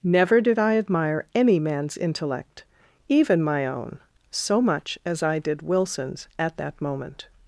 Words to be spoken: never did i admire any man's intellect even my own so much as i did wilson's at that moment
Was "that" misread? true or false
false